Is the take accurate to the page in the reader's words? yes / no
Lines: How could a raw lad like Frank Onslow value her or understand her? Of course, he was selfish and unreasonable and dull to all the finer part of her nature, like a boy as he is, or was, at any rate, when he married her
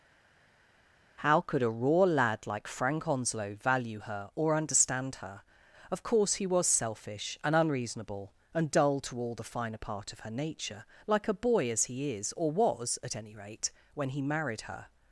yes